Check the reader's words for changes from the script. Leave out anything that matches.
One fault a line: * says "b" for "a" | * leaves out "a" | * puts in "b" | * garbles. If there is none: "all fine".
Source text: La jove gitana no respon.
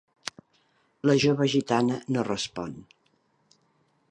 all fine